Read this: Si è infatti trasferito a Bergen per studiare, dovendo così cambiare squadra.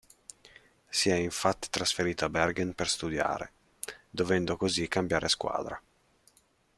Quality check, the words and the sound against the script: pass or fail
pass